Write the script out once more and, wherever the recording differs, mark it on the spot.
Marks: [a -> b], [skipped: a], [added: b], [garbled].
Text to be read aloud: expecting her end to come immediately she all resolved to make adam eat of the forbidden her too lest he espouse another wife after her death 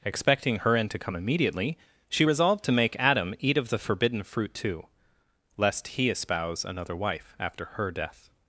expecting her end to come immediately she [skipped: all] resolved to make adam eat of the forbidden [her -> fruit] too lest he espouse another wife after her death